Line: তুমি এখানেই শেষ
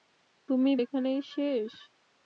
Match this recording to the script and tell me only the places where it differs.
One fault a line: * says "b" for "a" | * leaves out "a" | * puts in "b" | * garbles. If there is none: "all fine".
all fine